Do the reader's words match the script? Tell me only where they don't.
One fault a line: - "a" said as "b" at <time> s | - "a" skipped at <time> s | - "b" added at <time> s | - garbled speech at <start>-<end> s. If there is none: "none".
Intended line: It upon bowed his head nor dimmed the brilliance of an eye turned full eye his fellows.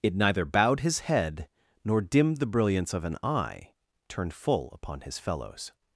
- "upon" said as "neither" at 0.1 s
- "eye" said as "upon" at 4.7 s